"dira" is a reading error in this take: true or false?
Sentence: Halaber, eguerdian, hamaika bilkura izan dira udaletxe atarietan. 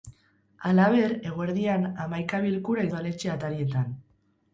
true